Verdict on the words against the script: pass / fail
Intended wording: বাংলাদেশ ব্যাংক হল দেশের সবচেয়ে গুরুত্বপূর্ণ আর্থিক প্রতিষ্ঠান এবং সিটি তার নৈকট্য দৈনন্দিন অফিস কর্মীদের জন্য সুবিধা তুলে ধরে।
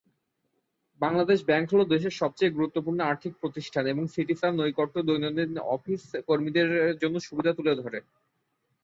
pass